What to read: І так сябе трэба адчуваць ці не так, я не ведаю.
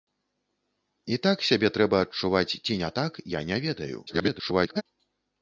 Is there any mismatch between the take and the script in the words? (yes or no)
yes